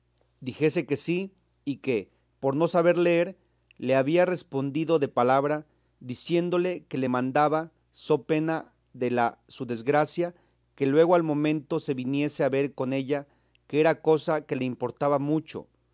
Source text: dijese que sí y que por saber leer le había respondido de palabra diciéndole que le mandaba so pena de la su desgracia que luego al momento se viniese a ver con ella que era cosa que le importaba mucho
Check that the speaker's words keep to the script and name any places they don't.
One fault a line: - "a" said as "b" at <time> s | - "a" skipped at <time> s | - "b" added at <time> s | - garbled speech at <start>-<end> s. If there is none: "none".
- "no" added at 2.5 s